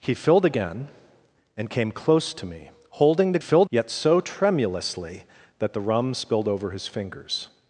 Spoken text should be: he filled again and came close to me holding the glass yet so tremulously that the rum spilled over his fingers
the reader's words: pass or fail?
fail